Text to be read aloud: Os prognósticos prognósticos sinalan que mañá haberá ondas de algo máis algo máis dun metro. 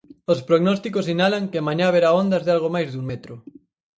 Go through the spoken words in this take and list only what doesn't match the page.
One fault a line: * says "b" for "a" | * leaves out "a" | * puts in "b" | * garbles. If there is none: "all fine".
* leaves out "prognósticos"
* leaves out "algo máis"